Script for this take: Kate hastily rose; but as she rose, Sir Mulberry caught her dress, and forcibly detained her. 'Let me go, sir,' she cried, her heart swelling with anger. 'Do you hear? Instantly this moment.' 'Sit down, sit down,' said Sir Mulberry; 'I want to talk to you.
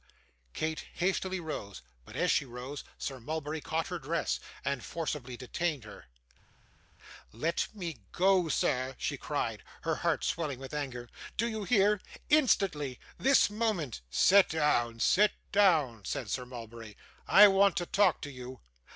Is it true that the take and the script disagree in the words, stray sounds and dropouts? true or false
false